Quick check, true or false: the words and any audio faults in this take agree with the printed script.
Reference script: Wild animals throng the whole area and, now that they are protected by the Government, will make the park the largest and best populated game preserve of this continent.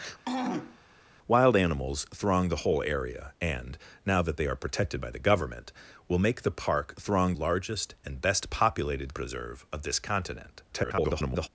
false